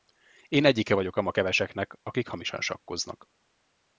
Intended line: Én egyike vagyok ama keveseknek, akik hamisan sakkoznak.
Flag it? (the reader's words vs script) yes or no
no